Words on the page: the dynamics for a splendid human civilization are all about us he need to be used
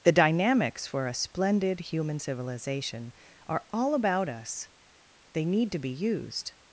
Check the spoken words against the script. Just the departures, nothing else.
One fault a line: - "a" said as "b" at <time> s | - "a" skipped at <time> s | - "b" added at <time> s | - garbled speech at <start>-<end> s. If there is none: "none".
- "he" said as "they" at 5.3 s